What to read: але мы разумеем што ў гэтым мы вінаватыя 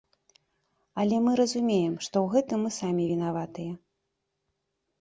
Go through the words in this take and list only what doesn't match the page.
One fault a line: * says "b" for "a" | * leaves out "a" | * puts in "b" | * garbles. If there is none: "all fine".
* puts in "самі"